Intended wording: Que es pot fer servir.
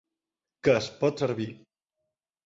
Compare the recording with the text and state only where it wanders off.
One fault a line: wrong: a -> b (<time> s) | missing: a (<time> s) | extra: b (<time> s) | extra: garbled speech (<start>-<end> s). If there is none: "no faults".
missing: fer (1.2 s)